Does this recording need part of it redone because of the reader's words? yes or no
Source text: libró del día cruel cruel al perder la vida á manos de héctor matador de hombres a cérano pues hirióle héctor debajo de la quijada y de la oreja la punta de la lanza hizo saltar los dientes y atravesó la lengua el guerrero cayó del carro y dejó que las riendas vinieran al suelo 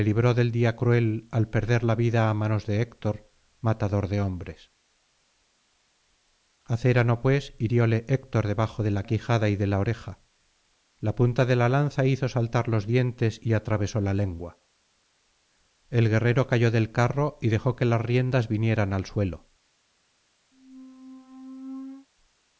yes